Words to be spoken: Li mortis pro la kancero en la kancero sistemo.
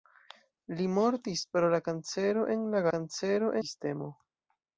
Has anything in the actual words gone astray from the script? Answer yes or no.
no